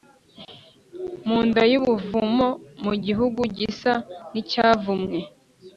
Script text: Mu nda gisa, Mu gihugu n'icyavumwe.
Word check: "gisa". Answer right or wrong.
wrong